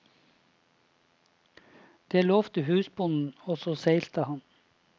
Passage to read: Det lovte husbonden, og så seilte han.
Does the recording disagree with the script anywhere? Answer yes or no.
no